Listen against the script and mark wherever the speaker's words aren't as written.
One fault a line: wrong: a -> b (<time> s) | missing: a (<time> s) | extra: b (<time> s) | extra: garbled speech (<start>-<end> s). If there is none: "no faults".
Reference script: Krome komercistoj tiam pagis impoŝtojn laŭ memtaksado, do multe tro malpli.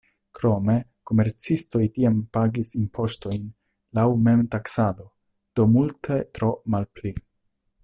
no faults